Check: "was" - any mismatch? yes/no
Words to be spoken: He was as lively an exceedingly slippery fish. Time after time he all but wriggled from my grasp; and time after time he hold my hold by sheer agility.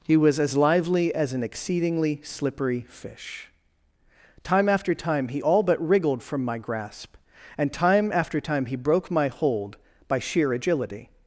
no